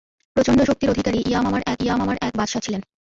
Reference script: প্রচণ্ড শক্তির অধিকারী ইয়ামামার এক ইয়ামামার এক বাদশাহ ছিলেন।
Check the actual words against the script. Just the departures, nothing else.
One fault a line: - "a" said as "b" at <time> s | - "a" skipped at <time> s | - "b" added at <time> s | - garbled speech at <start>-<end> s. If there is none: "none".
none